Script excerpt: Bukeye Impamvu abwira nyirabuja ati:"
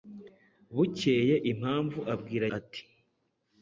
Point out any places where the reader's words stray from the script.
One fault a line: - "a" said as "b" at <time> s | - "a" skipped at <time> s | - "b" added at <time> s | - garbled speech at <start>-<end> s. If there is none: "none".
- "nyirabuja" skipped at 2.5 s